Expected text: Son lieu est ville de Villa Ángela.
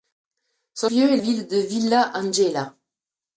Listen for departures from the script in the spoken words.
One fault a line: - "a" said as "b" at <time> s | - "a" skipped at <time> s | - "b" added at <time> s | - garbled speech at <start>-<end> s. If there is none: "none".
none